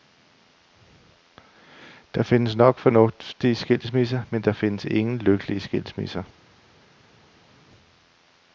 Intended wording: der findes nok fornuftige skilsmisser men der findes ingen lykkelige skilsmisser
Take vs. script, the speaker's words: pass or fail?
pass